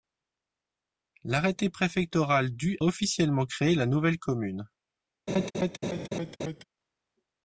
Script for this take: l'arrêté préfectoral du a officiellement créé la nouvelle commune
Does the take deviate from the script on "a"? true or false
true